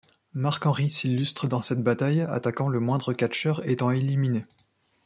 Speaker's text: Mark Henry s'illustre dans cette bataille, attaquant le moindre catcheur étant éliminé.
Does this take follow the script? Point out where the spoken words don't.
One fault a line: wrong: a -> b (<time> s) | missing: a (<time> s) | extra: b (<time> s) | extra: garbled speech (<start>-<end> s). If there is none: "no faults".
no faults